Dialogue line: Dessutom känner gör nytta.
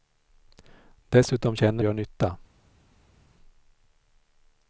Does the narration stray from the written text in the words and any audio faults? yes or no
no